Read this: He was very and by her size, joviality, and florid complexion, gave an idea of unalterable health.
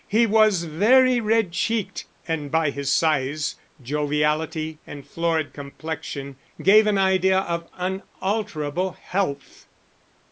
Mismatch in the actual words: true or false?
true